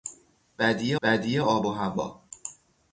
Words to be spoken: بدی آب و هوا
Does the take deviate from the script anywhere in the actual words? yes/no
yes